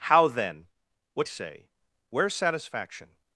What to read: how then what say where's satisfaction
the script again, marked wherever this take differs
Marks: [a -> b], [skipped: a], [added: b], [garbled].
how then what say where's satisfaction